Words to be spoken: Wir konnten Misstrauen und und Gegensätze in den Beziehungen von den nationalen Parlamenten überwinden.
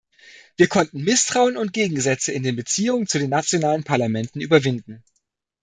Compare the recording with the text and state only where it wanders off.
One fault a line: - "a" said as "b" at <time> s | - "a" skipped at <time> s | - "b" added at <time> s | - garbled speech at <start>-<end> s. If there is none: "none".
- "und" skipped at 1.7 s
- "von" said as "zu" at 3.0 s